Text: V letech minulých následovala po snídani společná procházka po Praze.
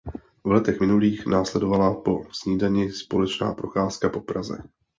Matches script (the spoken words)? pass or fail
pass